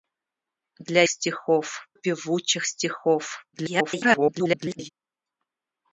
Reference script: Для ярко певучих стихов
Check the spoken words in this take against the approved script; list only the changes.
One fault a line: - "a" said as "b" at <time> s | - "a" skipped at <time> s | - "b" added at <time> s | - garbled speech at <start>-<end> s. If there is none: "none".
- "ярко" said as "стихов" at 1.1 s
- garbled speech at 3.5-4.9 s